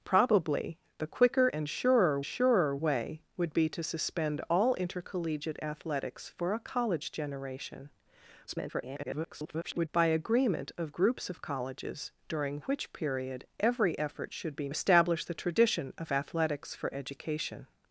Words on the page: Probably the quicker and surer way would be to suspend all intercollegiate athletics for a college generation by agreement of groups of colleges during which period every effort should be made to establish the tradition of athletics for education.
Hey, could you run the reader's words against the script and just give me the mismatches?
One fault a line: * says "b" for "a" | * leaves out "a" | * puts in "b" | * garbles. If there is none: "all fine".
* puts in "surer"
* garbles
* leaves out "made to"